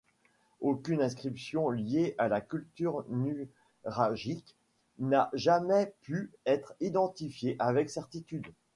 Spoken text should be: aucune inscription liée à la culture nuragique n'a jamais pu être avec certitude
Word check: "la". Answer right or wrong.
right